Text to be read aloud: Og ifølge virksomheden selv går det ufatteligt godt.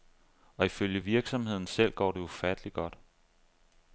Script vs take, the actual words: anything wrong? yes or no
no